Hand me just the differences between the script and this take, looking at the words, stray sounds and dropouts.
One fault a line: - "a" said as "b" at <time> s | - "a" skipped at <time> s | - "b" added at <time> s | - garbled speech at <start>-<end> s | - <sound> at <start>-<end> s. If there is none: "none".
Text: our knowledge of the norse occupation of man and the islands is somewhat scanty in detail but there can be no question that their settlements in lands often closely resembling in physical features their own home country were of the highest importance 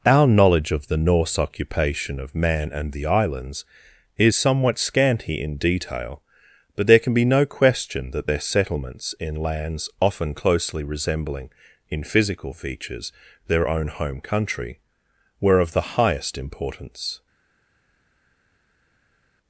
none